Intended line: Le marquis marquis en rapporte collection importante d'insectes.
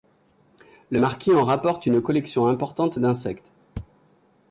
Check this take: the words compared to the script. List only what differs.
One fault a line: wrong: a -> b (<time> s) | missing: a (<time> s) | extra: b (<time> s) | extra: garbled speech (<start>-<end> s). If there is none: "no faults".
missing: marquis (1.3 s)
extra: une (1.9 s)